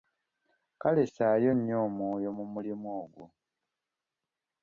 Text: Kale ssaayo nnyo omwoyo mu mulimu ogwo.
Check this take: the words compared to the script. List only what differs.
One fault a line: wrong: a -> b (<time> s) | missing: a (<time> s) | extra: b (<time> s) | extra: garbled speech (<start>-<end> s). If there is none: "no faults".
no faults